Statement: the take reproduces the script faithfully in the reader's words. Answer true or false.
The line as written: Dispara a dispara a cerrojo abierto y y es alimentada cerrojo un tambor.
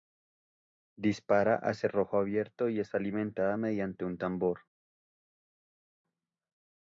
false